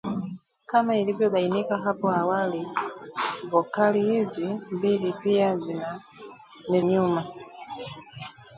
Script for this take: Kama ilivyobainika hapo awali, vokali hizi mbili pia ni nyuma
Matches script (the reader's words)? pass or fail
pass